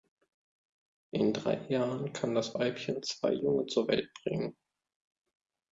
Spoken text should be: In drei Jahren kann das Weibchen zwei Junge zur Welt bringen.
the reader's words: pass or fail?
pass